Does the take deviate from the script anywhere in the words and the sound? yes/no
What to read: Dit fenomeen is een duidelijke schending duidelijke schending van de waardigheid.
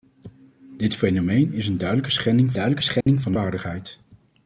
yes